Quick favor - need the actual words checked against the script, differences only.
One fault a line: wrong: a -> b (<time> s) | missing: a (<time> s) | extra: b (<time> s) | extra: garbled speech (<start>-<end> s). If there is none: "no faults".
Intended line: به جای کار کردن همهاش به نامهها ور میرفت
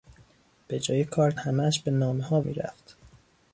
missing: کردن (1.3 s)
missing: ور (2.4 s)